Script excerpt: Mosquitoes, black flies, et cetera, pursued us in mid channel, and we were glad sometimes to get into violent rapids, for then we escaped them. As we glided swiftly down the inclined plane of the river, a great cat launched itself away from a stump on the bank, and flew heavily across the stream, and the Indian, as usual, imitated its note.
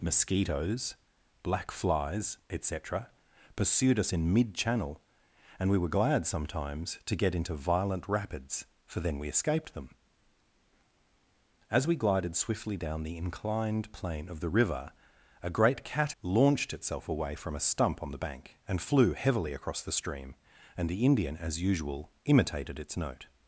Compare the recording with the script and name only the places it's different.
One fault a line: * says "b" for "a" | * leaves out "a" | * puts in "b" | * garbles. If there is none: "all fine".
all fine